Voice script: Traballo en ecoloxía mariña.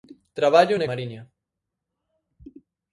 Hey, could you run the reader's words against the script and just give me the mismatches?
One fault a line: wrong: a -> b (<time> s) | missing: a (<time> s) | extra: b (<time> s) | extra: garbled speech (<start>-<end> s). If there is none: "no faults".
missing: ecoloxía (0.8 s)